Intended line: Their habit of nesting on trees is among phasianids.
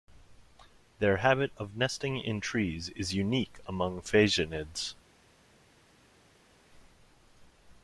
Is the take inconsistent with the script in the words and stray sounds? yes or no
yes